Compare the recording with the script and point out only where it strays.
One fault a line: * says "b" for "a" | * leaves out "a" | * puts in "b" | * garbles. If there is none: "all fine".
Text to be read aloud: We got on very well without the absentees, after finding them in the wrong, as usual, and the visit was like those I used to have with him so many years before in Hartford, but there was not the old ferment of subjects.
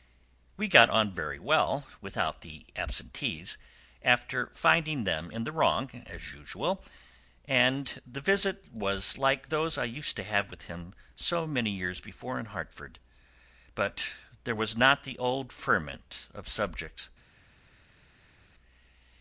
all fine